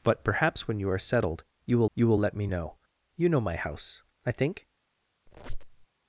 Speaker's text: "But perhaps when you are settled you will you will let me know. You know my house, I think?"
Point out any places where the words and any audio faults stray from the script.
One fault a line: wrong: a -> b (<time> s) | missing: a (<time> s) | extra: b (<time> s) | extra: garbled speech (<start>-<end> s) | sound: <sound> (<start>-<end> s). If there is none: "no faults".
sound: squeak (5.3-5.9 s)